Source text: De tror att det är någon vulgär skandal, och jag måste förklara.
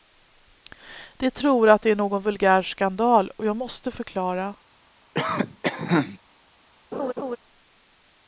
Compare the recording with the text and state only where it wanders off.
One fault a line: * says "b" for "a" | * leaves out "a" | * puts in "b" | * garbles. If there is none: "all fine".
all fine